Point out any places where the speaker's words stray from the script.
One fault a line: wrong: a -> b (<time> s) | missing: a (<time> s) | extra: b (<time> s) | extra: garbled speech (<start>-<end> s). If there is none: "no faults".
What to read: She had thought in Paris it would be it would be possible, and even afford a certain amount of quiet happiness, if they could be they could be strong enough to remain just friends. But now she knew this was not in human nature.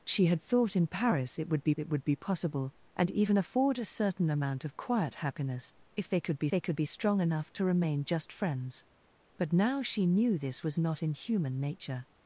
no faults